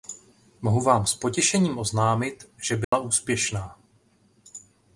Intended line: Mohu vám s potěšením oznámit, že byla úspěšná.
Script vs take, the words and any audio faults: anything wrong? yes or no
yes